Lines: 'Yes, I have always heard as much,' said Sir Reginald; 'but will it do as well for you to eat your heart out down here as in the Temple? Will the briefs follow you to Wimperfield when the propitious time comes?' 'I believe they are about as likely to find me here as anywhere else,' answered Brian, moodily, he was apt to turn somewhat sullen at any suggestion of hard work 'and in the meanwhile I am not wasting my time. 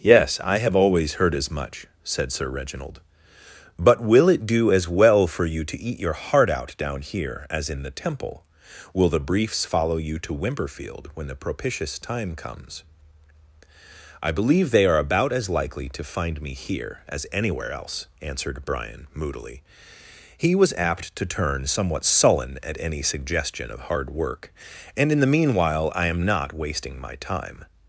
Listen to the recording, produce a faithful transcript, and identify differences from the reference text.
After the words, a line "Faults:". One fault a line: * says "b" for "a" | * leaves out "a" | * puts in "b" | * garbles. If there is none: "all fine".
'Yes, I have always heard as much,' said Sir Reginald; 'but will it do as well for you to eat your heart out down here as in the Temple? Will the briefs follow you to Wimperfield when the propitious time comes?' 'I believe they are about as likely to find me here as anywhere else,' answered Brian, moodily, he was apt to turn somewhat sullen at any suggestion of hard work 'and in the meanwhile I am not wasting my time.
Faults:
all fine